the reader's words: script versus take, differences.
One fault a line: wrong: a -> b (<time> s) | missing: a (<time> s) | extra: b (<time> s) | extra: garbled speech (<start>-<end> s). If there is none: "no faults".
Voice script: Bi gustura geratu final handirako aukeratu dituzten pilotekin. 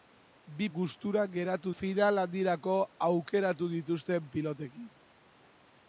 no faults